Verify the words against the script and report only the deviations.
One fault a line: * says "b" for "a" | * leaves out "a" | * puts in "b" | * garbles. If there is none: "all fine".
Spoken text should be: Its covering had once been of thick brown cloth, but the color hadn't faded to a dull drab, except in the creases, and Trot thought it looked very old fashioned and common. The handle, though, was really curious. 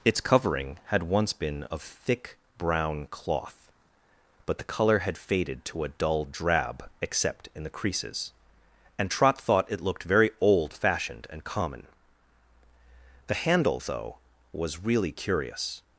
* says "had" for "hadn't"